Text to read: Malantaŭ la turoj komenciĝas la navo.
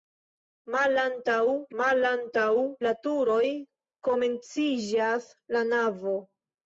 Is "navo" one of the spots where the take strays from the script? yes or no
no